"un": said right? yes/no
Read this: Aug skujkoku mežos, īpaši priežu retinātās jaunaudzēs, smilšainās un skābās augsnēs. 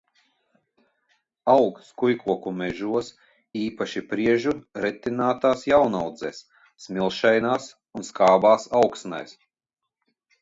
yes